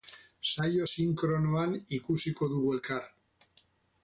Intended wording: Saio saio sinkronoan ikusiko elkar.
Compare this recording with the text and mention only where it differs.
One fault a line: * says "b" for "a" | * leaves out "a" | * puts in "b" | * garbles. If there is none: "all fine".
* leaves out "saio"
* puts in "dugu"